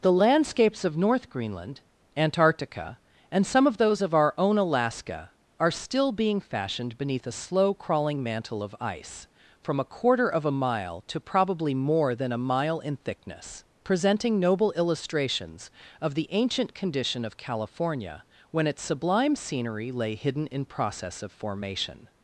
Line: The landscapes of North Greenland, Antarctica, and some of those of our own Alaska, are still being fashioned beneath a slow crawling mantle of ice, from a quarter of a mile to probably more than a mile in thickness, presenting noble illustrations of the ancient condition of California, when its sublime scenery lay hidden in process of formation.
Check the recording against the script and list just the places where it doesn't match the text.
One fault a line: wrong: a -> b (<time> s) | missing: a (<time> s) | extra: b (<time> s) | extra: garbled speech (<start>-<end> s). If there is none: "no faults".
no faults